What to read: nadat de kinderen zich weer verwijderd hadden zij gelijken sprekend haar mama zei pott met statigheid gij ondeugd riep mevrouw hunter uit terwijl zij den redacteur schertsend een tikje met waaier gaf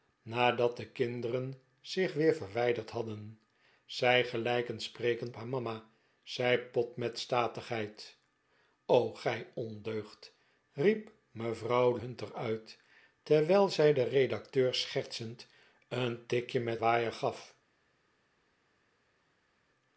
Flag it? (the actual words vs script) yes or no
no